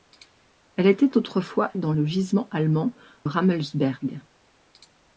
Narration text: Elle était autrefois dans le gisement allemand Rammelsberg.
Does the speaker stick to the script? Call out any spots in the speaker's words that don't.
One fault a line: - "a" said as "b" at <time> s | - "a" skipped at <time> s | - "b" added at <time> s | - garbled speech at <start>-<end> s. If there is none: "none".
none